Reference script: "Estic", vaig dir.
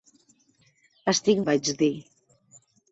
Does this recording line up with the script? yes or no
yes